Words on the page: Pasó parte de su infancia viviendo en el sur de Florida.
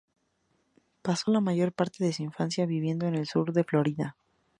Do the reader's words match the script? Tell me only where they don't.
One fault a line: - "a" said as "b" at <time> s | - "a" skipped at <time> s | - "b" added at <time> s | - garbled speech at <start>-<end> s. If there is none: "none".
- "la mayor" added at 1.3 s